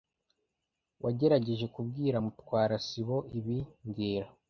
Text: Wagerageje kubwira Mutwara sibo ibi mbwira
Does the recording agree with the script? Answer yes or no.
yes